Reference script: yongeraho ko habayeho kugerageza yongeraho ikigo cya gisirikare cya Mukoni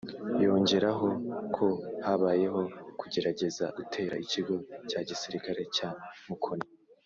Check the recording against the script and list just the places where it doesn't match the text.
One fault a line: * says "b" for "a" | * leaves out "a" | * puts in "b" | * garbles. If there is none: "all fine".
* says "gutera" for "yongeraho"